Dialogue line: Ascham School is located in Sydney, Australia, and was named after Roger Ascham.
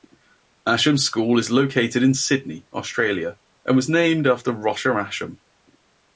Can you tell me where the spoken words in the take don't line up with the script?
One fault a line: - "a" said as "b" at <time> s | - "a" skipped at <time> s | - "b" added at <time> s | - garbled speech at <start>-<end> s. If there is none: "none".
none